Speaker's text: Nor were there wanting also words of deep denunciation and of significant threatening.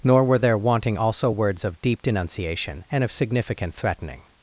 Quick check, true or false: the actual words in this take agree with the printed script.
true